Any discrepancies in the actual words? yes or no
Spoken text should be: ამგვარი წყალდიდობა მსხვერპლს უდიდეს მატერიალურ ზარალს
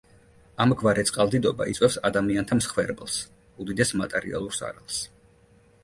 yes